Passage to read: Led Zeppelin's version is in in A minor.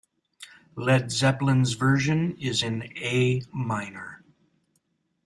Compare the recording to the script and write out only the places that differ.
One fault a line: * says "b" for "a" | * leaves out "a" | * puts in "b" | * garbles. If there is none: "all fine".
* leaves out "in"